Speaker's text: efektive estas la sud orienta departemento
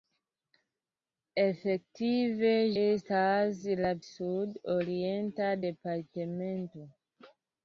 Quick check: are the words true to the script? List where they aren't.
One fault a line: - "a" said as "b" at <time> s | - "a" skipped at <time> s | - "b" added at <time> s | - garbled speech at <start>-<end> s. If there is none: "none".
none